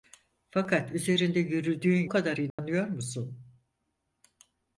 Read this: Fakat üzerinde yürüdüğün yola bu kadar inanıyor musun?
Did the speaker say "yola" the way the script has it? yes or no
no